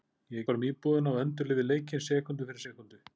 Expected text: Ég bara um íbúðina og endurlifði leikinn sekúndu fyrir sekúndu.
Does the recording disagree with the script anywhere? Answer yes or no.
no